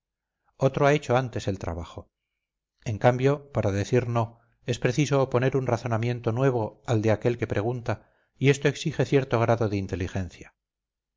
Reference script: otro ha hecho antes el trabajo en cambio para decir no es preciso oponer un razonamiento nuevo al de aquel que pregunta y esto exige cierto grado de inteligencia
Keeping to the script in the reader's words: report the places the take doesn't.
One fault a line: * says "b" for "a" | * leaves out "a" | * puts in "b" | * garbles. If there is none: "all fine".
all fine